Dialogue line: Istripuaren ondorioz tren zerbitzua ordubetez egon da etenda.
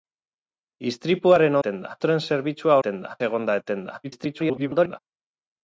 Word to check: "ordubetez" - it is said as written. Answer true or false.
false